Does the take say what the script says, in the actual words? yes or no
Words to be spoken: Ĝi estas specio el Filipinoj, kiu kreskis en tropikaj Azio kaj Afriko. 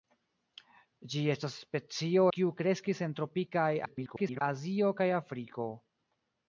no